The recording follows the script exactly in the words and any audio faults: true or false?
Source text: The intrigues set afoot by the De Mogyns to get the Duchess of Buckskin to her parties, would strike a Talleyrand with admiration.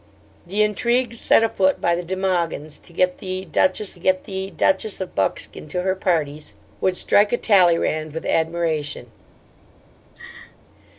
false